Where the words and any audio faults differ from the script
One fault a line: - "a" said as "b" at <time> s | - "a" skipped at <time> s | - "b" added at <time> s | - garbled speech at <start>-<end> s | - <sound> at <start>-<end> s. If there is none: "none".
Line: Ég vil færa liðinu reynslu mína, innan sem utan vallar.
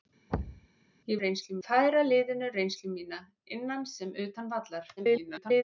- thud at 0.3-0.7 s
- "vil" said as "reynslu" at 1.2 s
- garbled speech at 5.0-5.6 s